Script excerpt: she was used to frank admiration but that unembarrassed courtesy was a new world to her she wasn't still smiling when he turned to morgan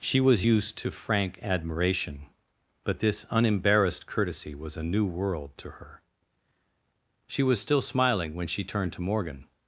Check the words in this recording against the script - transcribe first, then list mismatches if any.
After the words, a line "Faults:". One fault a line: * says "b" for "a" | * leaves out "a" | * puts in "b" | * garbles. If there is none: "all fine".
she was used to frank admiration but this unembarrassed courtesy was a new world to her she was still smiling when she turned to morgan
Faults:
* says "this" for "that"
* says "was" for "wasn't"
* says "she" for "he"